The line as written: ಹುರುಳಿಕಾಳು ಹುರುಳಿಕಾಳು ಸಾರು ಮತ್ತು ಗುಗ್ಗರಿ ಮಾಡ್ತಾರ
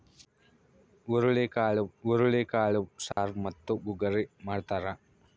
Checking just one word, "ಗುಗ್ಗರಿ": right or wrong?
right